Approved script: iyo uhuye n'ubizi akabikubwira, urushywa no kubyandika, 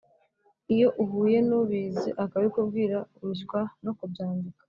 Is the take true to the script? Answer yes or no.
yes